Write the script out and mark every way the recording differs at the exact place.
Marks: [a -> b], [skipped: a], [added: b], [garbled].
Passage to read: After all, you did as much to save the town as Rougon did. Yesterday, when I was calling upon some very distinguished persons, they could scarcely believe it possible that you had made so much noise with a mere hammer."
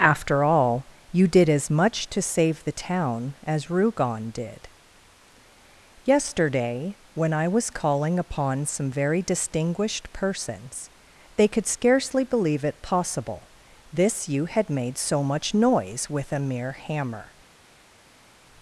After all, you did as much to save the town as Rougon did. Yesterday, when I was calling upon some very distinguished persons, they could scarcely believe it possible [that -> this] you had made so much noise with a mere hammer."